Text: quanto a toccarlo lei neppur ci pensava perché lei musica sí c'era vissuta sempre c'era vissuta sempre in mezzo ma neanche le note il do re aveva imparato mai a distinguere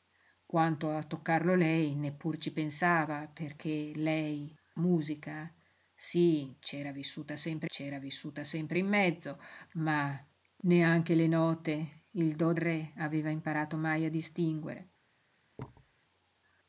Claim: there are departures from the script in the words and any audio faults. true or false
true